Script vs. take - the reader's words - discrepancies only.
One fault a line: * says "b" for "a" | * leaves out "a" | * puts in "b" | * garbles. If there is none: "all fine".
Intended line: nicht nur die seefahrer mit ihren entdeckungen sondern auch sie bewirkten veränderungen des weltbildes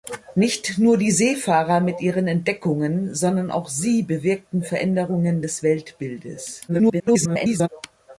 * garbles